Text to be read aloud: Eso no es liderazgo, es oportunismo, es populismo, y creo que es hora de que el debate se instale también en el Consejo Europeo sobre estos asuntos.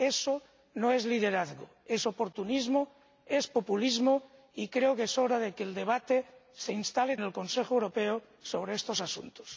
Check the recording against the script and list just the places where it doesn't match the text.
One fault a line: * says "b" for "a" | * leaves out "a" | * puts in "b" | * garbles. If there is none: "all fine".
* leaves out "también"